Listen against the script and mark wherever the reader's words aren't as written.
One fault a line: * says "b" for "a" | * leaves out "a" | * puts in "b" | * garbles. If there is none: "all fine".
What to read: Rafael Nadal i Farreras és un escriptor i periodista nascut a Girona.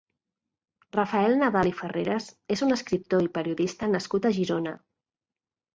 all fine